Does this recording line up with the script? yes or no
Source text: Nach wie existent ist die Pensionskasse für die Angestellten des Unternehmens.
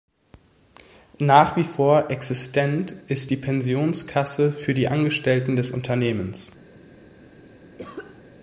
no